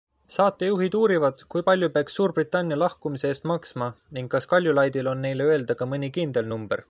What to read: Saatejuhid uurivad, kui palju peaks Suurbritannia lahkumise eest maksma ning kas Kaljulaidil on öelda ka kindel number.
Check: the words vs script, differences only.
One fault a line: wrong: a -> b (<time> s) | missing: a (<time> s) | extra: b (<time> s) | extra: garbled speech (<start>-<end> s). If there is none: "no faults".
extra: neile (5.3 s)
extra: mõni (5.9 s)